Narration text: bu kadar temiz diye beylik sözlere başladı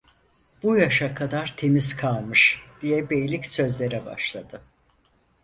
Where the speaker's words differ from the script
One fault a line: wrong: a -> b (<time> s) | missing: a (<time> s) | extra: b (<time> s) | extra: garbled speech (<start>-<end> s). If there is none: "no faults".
extra: yaşa (0.8 s)
extra: kalmış (1.9 s)